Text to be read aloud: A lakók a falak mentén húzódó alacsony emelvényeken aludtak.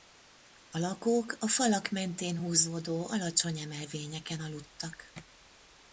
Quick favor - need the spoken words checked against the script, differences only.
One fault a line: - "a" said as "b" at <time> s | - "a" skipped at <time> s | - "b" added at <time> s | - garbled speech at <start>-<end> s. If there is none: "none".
none